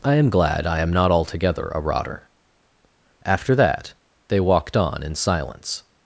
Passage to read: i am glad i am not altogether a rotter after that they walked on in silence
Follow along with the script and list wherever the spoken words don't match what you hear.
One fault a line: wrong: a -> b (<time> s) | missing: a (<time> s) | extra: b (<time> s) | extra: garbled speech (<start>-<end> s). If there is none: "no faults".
no faults